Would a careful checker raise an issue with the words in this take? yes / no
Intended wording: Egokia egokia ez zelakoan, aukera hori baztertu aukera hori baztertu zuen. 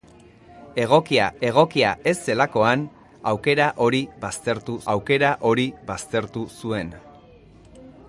no